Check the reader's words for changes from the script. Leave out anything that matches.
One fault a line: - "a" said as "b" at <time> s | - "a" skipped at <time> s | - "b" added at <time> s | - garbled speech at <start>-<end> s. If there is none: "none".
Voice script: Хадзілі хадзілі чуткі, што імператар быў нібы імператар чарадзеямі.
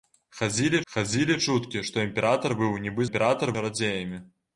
none